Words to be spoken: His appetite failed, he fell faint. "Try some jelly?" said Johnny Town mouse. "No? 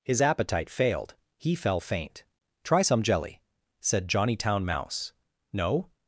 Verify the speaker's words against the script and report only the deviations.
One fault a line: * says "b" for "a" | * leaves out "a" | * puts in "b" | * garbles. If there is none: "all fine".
all fine